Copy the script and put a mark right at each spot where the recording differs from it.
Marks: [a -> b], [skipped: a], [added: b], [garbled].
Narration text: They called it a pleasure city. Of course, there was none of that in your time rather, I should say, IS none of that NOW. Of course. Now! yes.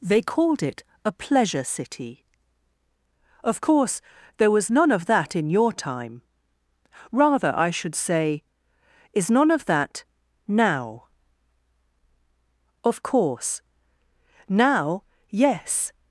They called it a pleasure city. Of course, there was none of that in your time rather, I should say, IS none of that NOW. Of course. Now! yes.